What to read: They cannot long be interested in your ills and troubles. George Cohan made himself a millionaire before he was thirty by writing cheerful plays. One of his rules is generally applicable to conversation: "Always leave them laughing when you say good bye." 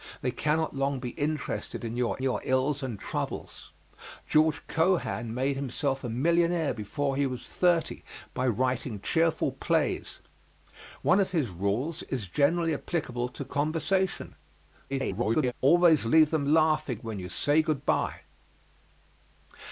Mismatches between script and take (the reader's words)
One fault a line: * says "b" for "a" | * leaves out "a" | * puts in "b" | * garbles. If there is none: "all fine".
* puts in "your"
* garbles